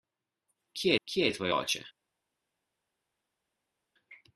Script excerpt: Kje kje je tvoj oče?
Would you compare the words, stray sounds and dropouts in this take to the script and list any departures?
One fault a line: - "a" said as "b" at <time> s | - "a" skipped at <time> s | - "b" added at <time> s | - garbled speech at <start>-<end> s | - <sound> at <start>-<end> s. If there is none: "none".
none